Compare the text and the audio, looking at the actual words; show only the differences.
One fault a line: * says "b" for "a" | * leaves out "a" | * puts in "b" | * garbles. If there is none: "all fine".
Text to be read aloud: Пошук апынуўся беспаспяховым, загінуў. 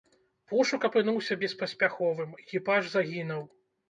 * puts in "экіпаж"